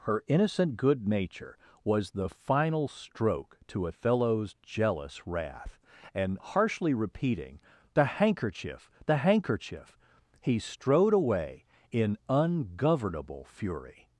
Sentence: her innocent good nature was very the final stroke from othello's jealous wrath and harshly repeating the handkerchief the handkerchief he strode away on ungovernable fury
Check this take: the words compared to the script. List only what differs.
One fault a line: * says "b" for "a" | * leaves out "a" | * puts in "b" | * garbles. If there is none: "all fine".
* leaves out "very"
* says "to" for "from"
* says "in" for "on"